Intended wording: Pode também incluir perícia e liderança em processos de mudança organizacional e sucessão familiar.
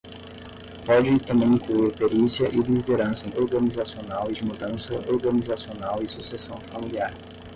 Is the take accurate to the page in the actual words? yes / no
no